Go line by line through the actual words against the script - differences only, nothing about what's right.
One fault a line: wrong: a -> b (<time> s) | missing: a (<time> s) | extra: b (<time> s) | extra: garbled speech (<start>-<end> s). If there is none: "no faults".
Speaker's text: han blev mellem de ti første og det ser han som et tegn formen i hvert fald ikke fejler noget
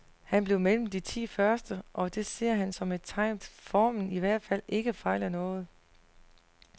no faults